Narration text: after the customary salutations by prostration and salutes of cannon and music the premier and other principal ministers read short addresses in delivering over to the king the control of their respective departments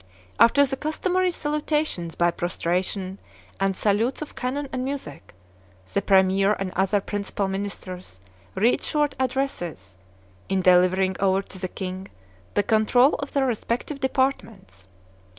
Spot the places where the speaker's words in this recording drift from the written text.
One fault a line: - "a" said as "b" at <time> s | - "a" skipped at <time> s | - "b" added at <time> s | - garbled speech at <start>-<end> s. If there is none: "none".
none